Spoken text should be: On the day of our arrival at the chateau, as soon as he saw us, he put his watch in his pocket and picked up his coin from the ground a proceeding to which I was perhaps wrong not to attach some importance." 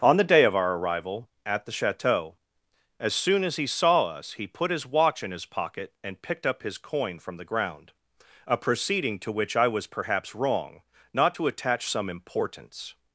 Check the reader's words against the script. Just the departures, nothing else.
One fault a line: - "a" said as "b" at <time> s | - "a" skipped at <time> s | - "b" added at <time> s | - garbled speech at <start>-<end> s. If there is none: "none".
none